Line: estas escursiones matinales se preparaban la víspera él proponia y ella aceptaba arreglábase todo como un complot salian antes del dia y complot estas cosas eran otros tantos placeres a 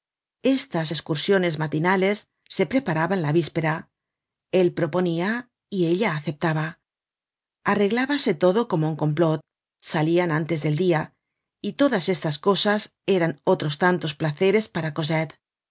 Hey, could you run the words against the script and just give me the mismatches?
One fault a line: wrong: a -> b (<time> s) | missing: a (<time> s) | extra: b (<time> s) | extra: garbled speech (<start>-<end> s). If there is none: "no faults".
wrong: complot -> todas (11.7 s)
wrong: a -> para (14.7 s)